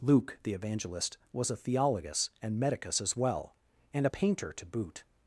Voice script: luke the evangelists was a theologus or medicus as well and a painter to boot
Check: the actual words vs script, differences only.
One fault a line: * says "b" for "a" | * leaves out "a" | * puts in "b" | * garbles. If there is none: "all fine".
* says "evangelist" for "evangelists"
* says "and" for "or"